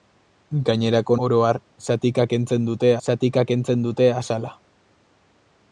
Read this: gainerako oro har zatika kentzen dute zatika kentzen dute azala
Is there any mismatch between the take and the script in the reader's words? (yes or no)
no